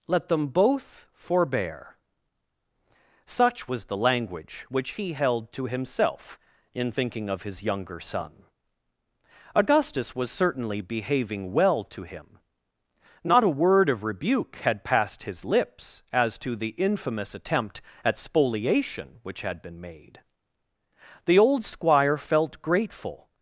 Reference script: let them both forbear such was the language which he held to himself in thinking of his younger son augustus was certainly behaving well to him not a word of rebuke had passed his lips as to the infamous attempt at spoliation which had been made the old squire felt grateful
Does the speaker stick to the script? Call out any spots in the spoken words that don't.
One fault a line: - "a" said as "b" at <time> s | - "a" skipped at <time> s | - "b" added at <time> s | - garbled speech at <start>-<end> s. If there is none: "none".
none